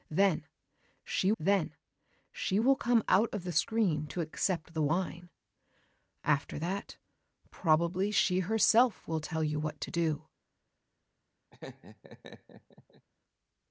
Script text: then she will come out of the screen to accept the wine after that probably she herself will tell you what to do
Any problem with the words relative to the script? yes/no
yes